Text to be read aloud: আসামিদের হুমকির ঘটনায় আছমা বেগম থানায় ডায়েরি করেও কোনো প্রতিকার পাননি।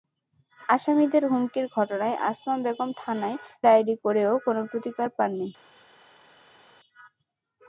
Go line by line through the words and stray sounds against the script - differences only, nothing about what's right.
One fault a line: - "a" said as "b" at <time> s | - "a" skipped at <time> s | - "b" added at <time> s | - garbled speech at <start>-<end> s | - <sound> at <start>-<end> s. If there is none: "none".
none